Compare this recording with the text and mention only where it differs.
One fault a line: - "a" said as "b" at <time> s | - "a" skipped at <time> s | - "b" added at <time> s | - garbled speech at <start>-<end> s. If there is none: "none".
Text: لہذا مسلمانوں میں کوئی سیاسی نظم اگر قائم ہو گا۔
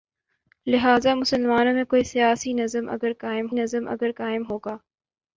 - "نظم اگر قائم" added at 3.5 s